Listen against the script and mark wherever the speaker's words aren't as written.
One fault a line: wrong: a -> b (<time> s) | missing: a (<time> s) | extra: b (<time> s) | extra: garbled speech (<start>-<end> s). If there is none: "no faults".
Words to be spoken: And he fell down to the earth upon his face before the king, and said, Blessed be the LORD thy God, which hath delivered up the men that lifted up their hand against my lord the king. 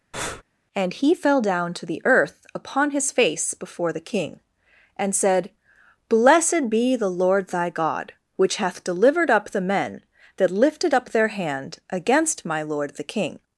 no faults